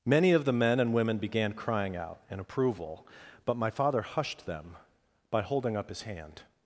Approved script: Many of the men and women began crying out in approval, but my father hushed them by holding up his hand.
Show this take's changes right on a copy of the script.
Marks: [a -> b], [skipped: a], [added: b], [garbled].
Many of the men and women began crying out in approval, but my father hushed them by holding up his hand.